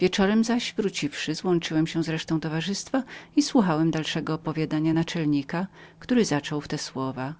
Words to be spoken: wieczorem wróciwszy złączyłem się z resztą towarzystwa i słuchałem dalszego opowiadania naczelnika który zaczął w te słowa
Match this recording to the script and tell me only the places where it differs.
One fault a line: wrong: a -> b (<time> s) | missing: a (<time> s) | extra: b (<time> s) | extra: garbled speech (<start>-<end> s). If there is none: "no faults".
extra: zaś (0.4 s)